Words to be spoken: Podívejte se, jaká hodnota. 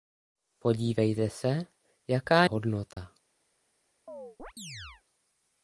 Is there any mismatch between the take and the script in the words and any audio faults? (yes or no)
yes